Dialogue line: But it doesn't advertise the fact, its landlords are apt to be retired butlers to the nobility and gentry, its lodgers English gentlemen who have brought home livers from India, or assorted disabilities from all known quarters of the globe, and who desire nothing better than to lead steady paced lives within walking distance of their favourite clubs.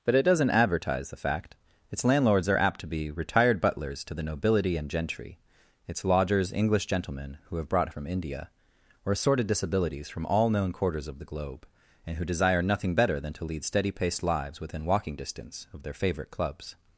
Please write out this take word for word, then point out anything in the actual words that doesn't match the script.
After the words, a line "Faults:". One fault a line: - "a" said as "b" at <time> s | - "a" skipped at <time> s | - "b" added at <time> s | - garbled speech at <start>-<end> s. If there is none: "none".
But it doesn't advertise the fact, its landlords are apt to be retired butlers to the nobility and gentry, its lodgers English gentlemen who have brought from India, or assorted disabilities from all known quarters of the globe, and who desire nothing better than to lead steady paced lives within walking distance of their favourite clubs.
Faults:
- "home livers" skipped at 7.9 s